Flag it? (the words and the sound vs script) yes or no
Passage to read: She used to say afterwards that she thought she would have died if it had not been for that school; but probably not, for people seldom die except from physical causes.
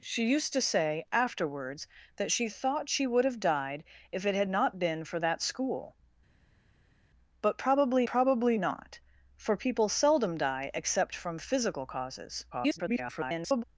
yes